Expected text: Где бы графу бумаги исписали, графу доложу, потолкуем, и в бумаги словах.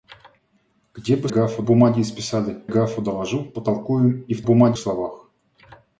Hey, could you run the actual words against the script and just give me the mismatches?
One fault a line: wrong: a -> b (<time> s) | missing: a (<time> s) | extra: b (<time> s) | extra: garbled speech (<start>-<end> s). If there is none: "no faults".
no faults